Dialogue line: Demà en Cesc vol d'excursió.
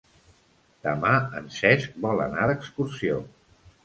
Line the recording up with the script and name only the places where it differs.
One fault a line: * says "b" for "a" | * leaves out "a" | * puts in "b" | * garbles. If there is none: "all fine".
* puts in "anar"